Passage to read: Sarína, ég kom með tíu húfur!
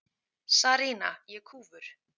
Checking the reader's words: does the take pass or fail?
fail